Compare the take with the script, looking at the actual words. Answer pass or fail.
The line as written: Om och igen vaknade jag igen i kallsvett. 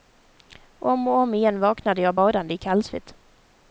fail